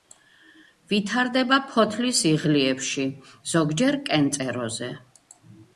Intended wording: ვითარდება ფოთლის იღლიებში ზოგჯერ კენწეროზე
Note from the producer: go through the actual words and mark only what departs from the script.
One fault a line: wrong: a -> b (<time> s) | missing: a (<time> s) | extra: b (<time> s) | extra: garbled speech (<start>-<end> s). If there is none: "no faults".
no faults